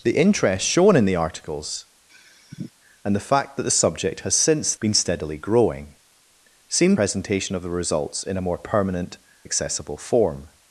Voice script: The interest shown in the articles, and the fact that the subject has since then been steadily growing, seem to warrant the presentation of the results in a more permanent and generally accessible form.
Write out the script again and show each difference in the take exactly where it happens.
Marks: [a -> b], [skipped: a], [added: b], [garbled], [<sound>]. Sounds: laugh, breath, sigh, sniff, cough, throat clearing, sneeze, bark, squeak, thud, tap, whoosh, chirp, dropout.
The interest shown in the articles, [sigh] and the fact that the subject has since [skipped: then] been steadily growing, seem [skipped: to warrant the] presentation of the results in a more permanent [skipped: and generally] accessible form.